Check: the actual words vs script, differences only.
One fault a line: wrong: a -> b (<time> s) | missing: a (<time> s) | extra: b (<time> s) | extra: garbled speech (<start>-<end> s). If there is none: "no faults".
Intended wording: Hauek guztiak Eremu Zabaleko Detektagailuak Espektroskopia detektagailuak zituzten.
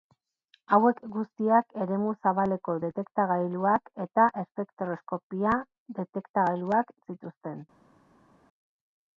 extra: eta (4.1 s)